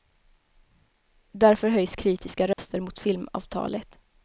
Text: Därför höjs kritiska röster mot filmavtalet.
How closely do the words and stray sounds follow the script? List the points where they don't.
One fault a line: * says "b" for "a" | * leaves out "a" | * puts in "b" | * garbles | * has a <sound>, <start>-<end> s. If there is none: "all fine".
* has a dropout, 2.5-2.6 s